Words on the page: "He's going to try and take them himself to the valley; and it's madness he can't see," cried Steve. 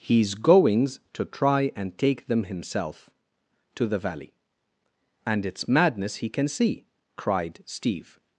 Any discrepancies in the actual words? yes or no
yes